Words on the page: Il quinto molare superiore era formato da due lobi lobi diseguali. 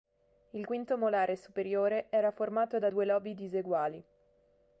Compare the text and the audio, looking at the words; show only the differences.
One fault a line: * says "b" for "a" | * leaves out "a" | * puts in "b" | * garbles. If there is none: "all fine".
* leaves out "lobi"